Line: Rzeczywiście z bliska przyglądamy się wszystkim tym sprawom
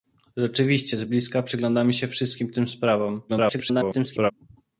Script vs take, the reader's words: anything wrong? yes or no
yes